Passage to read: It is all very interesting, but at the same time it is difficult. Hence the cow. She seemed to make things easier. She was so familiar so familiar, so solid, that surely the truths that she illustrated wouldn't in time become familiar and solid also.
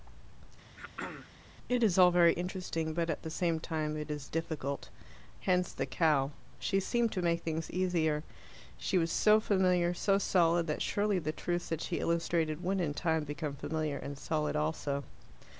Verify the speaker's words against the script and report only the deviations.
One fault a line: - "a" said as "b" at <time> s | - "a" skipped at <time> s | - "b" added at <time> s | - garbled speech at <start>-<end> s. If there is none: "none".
- "familiar so" skipped at 10.2 s
- "wouldn't" said as "would" at 12.6 s